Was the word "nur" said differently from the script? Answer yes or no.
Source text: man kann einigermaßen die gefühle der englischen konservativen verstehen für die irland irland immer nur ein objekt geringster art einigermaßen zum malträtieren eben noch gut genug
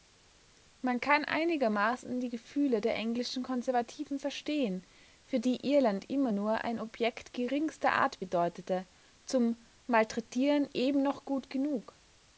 no